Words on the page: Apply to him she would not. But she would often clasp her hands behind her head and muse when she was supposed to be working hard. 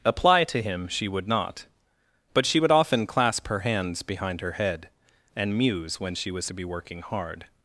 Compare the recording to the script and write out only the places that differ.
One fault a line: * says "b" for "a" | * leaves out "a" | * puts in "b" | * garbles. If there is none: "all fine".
* leaves out "supposed"